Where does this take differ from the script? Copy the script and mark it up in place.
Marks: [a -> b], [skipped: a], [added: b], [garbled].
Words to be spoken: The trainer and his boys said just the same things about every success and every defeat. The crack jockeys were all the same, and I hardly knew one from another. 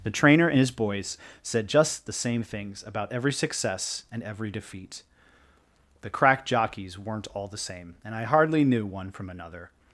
The trainer and his boys said just the same things about every success and every defeat. The crack jockeys [were -> weren't] all the same, and I hardly knew one from another.